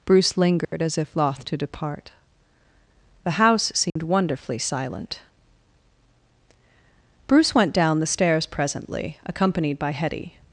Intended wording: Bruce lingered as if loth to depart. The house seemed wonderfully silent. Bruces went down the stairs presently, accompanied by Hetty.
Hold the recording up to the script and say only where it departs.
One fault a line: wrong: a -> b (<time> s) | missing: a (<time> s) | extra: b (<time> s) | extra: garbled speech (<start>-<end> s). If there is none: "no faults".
wrong: Bruces -> Bruce (7.3 s)